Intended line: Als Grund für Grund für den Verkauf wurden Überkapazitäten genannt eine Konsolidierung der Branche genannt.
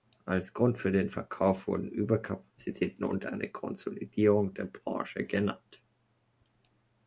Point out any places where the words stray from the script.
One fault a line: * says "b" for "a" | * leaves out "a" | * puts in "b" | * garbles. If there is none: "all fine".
* leaves out "Grund für"
* says "und" for "genannt"